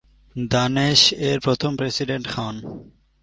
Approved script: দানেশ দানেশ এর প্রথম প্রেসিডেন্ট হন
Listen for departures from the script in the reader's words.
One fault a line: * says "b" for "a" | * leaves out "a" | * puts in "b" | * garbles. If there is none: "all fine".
* leaves out "দানেশ"